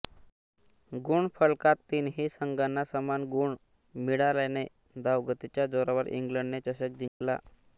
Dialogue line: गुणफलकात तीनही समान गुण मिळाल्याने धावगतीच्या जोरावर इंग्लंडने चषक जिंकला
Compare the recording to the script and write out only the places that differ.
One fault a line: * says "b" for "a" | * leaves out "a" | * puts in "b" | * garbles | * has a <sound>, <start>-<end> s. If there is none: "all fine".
* puts in "संघांना"
* has a dropout, 7.1-7.2 s